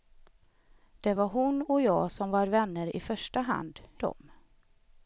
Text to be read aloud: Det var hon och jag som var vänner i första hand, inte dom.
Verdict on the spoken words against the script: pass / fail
fail